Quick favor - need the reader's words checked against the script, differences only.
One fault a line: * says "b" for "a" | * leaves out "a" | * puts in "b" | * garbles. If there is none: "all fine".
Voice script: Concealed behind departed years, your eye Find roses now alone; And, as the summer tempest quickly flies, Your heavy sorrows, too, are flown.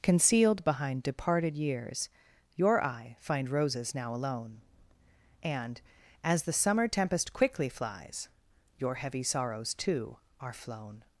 all fine